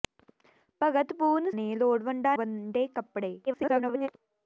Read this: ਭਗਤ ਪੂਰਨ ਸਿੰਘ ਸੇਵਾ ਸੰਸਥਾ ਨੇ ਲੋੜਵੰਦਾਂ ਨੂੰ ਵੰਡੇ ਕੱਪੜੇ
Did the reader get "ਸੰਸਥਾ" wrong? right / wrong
wrong